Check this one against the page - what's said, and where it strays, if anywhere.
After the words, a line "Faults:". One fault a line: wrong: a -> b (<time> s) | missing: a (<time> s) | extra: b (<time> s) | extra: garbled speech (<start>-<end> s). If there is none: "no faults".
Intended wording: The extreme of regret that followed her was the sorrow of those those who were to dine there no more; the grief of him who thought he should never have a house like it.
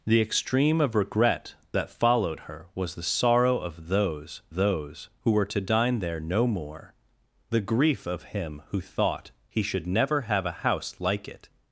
The extreme of regret that followed her was the sorrow of those those who were to dine there no more; the grief of him who thought he should never have a house like it.
Faults:
no faults